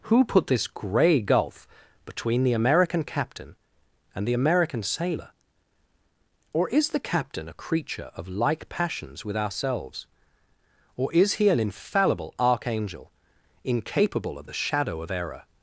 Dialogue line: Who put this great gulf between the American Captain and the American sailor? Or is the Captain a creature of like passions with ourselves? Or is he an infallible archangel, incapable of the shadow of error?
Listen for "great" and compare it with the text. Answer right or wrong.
wrong